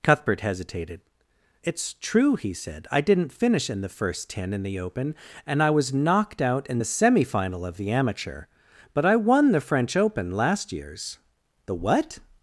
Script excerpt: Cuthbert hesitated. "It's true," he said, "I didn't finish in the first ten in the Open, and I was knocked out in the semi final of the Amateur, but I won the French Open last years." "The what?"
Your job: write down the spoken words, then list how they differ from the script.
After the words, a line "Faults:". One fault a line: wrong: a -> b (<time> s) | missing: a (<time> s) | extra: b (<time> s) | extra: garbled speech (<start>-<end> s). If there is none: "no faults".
Cuthbert hesitated. "It's true," he said, "I didn't finish in the first ten in the Open, and I was knocked out in the semi final of the Amateur, but I won the French Open last years." "The what?"
Faults:
no faults